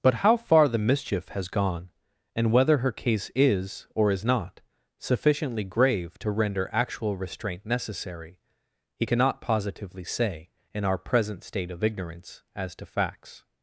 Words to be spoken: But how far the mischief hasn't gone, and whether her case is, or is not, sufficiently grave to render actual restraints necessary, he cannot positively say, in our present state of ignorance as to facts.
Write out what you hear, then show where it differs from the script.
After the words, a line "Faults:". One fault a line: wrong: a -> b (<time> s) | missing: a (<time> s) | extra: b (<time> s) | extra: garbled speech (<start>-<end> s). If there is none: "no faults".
But how far the mischief has gone, and whether her case is, or is not, sufficiently grave to render actual restraint necessary, he cannot positively say, in our present state of ignorance as to facts.
Faults:
wrong: hasn't -> has (1.3 s)
wrong: restraints -> restraint (7.2 s)